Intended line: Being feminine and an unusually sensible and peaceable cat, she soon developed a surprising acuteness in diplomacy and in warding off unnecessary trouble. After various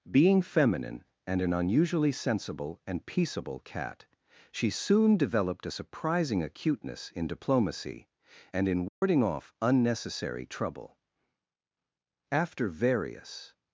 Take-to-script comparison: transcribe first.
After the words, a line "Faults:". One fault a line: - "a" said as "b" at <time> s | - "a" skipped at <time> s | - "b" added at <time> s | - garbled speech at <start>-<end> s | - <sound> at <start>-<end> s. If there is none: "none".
Being feminine and an unusually sensible and peaceable cat, she soon developed a surprising acuteness in diplomacy and in warding off unnecessary trouble. After various
Faults:
- dropout at 8.9-9.0 s